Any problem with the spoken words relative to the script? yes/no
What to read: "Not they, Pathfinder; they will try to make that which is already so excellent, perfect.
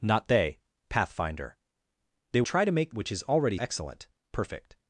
yes